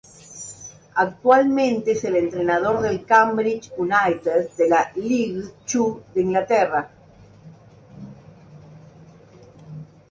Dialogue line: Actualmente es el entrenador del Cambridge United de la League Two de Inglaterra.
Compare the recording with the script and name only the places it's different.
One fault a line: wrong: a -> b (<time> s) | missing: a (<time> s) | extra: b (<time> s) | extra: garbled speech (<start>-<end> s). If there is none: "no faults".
no faults